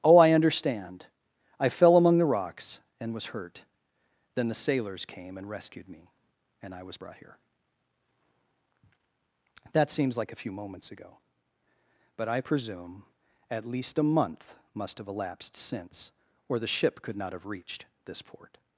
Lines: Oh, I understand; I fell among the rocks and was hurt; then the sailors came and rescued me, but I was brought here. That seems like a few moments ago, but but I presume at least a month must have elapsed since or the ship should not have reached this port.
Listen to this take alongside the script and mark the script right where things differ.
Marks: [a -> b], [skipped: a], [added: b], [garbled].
Oh, I understand; I fell among the rocks and was hurt; then the sailors came and rescued me, [but -> and] I was brought here. That seems like a few moments ago, but [skipped: but] I presume at least a month must have elapsed since or the ship [should -> could] not have reached this port.